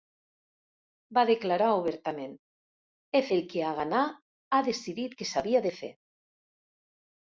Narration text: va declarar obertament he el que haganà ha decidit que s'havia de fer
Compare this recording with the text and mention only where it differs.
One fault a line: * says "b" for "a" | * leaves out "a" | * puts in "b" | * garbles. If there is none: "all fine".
all fine